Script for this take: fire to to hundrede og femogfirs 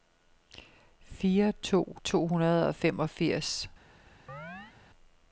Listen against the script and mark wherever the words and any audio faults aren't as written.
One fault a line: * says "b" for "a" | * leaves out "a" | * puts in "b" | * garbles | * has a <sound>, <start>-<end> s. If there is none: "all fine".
* has a chirp, 4.3-4.8 s